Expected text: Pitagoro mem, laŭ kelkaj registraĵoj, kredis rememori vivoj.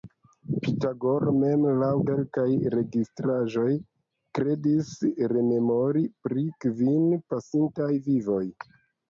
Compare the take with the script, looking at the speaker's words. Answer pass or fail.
fail